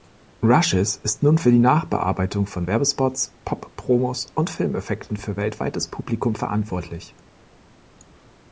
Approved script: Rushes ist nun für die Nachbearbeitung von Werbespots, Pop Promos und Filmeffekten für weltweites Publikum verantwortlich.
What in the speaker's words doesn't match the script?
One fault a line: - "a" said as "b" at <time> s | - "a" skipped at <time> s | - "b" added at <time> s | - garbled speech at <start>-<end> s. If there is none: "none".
none